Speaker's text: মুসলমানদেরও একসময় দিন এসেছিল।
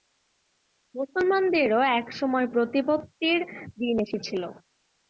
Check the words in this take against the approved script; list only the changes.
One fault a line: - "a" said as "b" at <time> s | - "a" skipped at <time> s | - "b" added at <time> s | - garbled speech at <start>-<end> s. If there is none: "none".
- "প্রতিপত্তির" added at 2.5 s